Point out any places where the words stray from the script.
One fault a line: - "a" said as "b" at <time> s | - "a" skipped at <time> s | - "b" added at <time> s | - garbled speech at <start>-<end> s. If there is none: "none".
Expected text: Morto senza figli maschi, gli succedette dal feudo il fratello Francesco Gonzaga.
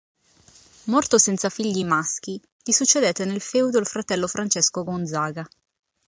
- "dal" said as "nel" at 3.3 s